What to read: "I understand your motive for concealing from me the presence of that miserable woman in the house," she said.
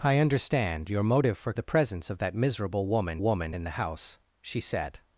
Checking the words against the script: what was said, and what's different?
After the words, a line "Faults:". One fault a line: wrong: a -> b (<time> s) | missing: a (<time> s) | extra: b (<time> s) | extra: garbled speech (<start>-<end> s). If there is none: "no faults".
"I understand your motive for the presence of that miserable woman woman in the house," she said.
Faults:
missing: concealing from me (1.5 s)
extra: woman (3.2 s)